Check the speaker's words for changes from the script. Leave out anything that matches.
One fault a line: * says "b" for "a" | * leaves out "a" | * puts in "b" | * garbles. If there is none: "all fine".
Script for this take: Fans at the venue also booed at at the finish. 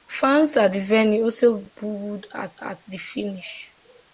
all fine